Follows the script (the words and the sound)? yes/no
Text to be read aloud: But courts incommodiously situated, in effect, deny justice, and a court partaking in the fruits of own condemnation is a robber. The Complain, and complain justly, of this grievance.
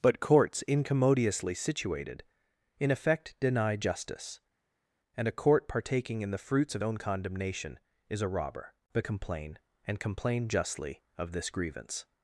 yes